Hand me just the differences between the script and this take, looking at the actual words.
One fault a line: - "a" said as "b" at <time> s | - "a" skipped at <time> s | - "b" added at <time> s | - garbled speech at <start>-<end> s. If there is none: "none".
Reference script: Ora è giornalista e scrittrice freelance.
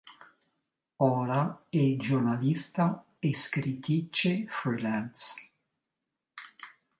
none